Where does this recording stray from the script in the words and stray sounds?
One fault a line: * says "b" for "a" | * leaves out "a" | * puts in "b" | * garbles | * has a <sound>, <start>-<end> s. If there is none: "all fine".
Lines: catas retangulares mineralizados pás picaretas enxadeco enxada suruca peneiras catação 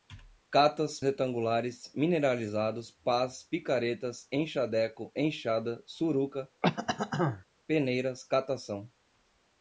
* has a throat clearing, 6.6-7.4 s